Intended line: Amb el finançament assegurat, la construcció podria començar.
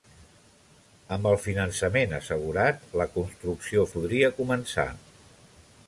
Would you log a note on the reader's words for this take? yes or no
no